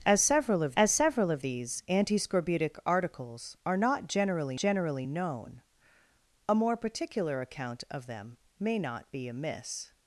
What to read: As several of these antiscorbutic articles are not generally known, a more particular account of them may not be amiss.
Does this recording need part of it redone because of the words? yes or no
yes